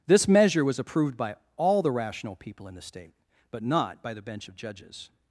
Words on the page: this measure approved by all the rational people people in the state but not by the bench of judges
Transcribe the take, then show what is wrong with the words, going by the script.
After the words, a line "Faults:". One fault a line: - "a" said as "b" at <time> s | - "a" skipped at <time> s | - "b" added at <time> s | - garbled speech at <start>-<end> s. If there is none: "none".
this measure was approved by all the rational people in the state but not by the bench of judges
Faults:
- "was" added at 0.7 s
- "people" skipped at 2.7 s